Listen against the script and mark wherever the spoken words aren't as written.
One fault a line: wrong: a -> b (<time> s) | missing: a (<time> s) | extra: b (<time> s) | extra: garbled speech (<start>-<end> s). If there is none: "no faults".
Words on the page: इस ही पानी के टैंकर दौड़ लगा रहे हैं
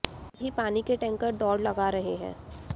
no faults